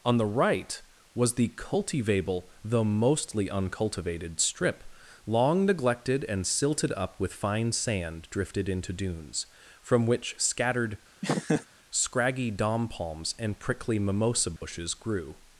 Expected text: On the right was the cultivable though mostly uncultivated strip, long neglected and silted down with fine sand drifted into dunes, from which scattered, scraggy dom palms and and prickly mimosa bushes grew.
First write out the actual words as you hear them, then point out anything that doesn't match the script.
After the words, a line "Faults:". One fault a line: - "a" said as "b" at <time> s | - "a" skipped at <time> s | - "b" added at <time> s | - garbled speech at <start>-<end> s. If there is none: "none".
On the right was the cultivable though mostly uncultivated strip, long neglected and silted up with fine sand drifted into dunes, from which scattered, scraggy dom palms and prickly mimosa bushes grew.
Faults:
- "down" said as "up" at 6.9 s
- "and" skipped at 13.6 s